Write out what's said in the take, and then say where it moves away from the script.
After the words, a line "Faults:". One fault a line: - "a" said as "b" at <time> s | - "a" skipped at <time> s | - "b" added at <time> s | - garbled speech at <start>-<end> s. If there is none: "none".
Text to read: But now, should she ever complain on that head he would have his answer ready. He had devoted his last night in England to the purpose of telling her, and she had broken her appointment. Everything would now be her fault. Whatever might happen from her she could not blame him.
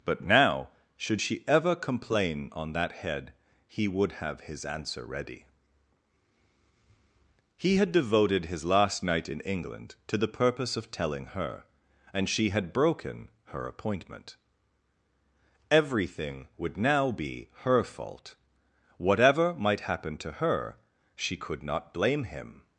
But now, should she ever complain on that head he would have his answer ready. He had devoted his last night in England to the purpose of telling her, and she had broken her appointment. Everything would now be her fault. Whatever might happen to her she could not blame him.
Faults:
- "from" said as "to" at 20.2 s